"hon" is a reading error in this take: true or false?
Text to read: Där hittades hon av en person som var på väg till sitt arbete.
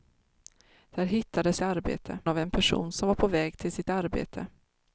true